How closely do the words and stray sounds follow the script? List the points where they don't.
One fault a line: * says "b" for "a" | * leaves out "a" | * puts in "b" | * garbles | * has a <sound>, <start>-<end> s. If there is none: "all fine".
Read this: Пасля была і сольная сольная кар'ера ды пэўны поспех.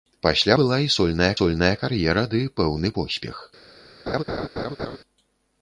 * has a laugh, 4.1-5.0 s